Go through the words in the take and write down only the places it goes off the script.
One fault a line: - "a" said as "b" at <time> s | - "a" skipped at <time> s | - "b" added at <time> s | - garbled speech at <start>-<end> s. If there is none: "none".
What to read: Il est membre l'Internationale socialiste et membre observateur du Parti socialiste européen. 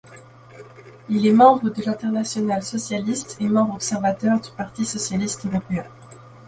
- "de" added at 1.7 s